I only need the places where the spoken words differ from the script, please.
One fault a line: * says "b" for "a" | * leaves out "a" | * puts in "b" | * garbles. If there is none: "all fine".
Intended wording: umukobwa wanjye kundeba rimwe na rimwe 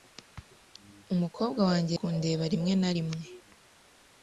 all fine